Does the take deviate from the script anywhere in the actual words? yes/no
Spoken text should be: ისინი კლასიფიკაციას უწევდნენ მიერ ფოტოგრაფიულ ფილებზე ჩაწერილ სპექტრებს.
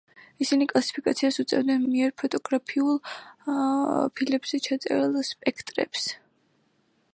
no